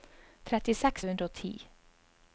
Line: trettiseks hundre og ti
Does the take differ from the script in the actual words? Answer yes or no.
no